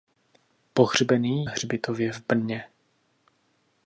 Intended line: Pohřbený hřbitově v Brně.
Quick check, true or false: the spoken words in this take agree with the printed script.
true